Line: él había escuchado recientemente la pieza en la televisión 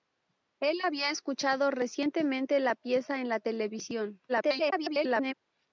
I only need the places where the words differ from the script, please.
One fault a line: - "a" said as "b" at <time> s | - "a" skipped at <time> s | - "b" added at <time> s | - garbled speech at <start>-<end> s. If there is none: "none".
- garbled speech at 4.3-5.3 s